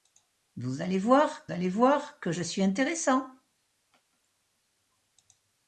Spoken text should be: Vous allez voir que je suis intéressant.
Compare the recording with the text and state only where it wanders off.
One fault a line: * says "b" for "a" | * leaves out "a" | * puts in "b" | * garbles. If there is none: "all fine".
* puts in "allez voir"